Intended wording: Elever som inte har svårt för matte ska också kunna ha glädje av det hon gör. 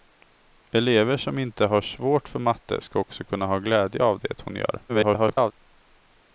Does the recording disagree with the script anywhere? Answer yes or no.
yes